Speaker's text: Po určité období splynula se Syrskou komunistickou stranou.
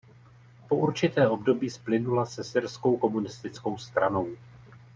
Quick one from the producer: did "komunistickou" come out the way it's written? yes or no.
yes